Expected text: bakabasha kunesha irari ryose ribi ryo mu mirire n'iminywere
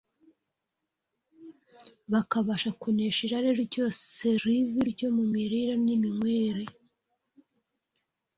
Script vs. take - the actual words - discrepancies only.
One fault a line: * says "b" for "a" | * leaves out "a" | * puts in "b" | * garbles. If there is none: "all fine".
all fine